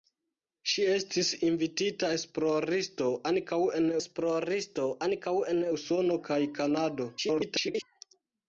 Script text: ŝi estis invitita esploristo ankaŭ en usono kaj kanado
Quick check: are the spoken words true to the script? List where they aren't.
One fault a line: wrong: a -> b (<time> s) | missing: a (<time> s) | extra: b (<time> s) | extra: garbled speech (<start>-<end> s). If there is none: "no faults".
extra: esploristo ankaŭ en (4.0 s)
extra: garbled speech (7.2-7.8 s)